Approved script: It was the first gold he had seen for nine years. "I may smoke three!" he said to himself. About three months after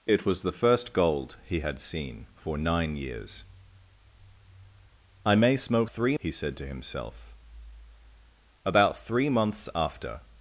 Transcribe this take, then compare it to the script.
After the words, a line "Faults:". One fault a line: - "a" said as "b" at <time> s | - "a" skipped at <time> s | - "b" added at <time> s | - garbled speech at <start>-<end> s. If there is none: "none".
It was the first gold he had seen for nine years. "I may smoke three!" he said to himself. About three months after
Faults:
none